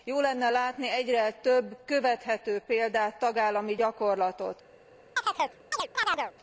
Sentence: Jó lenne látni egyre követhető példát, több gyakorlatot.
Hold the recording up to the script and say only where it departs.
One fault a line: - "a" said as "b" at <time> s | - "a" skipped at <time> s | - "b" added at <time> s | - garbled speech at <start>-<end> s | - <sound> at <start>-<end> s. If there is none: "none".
- "több" added at 1.3 s
- "több" said as "tagállami" at 3.2 s
- chirp at 5.2-6.3 s